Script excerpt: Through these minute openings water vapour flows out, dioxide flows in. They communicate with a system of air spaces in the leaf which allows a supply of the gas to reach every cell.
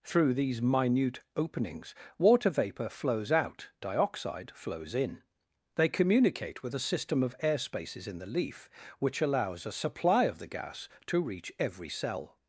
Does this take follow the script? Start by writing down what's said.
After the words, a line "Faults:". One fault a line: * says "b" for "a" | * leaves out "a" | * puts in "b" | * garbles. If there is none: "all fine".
Through these minute openings water vapour flows out, dioxide flows in. They communicate with a system of air spaces in the leaf which allows a supply of the gas to reach every cell.
Faults:
all fine